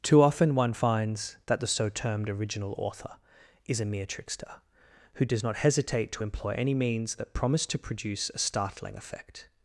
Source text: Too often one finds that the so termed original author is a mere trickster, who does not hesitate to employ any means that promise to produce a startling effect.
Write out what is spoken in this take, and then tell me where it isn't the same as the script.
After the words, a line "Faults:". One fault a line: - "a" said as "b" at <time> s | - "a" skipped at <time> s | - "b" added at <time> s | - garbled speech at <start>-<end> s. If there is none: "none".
Too often one finds that the so termed original author is a mere trickster, who does not hesitate to employ any means that promise to produce a startling effect.
Faults:
none